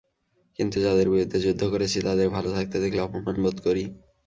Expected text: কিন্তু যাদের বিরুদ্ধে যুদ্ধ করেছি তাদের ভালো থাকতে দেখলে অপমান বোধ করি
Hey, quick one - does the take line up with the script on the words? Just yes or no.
yes